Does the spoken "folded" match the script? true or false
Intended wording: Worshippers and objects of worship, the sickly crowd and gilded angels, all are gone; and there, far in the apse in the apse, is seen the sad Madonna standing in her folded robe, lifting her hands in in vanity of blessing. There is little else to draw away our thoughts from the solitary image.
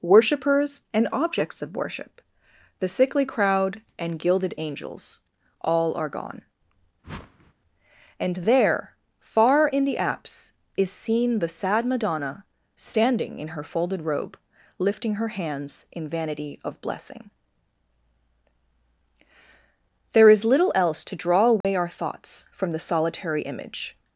true